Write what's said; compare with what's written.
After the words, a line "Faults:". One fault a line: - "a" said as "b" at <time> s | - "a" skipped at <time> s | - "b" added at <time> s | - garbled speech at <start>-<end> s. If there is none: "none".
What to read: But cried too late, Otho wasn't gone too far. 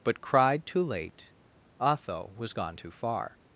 But cried too late, Otho was gone too far.
Faults:
- "wasn't" said as "was" at 2.4 s